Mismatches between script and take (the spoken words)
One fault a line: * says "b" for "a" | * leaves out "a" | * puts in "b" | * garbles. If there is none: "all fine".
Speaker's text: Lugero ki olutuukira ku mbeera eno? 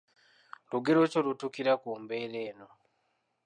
all fine